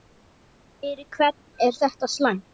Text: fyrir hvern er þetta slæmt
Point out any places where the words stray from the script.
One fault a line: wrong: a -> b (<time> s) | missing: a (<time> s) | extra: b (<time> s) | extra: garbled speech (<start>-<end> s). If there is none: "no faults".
no faults